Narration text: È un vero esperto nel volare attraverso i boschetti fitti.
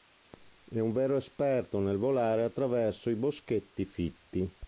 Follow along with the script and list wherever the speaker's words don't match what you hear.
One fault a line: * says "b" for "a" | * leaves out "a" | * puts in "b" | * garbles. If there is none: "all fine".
all fine